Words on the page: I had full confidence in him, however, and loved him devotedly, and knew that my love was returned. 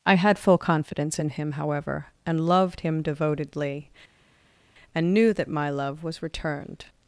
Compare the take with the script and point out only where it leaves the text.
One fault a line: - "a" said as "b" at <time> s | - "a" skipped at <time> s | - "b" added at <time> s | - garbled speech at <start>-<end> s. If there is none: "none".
none